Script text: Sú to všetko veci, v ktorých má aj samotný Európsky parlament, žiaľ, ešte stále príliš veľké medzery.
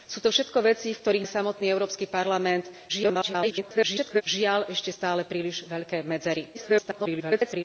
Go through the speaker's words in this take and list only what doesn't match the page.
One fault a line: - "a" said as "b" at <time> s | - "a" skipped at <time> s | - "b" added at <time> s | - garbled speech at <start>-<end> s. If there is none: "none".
- "má" skipped at 1.3 s
- garbled speech at 2.9-4.2 s
- garbled speech at 6.5-7.6 s